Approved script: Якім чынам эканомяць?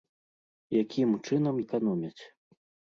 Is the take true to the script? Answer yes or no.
yes